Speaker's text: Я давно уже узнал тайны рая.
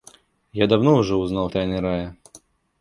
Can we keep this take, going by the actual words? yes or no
yes